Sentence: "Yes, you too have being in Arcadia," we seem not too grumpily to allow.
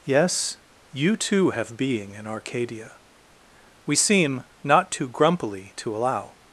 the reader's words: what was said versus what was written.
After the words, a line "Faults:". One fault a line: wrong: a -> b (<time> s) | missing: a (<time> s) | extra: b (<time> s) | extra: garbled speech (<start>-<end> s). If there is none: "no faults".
"Yes, you too have being in Arcadia," we seem not too grumpily to allow.
Faults:
no faults